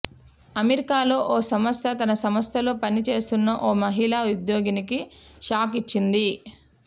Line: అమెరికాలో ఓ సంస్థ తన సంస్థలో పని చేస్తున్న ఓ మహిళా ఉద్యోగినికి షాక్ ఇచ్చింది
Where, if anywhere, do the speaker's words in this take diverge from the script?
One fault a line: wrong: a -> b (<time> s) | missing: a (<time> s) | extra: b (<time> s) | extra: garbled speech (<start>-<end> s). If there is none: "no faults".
no faults